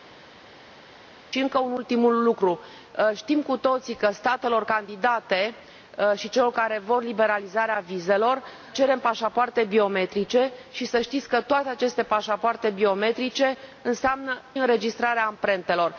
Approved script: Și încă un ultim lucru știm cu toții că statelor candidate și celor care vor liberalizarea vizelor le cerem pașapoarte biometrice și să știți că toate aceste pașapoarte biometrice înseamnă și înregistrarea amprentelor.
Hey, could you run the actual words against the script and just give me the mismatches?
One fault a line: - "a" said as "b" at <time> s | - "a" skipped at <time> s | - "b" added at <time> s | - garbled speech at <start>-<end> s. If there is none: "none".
- "le" skipped at 8.4 s
- "și" skipped at 14.4 s